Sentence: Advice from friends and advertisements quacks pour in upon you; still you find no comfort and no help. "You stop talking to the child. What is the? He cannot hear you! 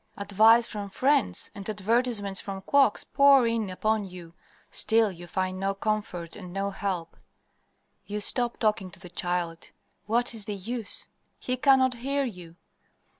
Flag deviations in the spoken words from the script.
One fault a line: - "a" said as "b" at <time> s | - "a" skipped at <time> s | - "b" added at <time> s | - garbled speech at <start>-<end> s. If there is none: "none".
- "from" added at 2.4 s
- "use" added at 10.5 s